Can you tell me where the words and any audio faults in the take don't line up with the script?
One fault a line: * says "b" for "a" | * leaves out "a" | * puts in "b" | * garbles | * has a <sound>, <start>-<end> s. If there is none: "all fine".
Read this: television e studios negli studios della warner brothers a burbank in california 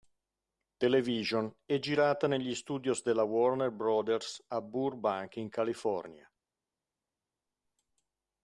* says "girata" for "studios"